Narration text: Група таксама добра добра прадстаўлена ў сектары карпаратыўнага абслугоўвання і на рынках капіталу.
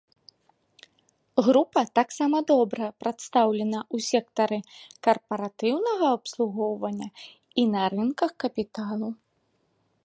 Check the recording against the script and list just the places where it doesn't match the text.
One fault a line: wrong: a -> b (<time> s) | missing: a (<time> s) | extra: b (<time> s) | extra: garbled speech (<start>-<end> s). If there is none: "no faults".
missing: добра (2.9 s)